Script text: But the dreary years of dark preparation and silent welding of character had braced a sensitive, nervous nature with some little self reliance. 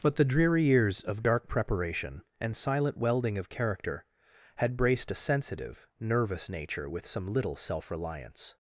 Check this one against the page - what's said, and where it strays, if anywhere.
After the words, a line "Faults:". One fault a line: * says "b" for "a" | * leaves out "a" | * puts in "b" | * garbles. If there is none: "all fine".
But the dreary years of dark preparation and silent welding of character had braced a sensitive, nervous nature with some little self reliance.
Faults:
all fine